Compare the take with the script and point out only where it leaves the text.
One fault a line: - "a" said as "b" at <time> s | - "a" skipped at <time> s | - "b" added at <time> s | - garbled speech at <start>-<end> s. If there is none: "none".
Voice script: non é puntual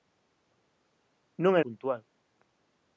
none